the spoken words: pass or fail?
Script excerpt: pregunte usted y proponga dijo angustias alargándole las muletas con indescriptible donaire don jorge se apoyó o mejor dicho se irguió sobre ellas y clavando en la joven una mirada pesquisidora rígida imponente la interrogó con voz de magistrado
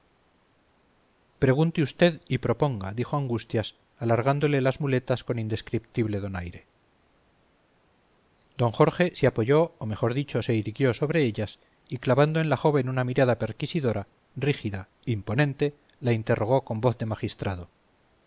pass